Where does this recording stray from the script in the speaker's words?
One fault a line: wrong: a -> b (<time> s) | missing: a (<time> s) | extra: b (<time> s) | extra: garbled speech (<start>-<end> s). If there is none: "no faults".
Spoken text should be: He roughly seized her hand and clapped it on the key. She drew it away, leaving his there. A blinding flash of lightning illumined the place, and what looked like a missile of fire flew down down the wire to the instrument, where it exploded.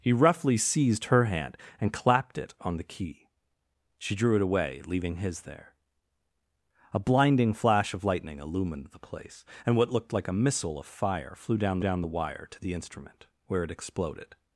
no faults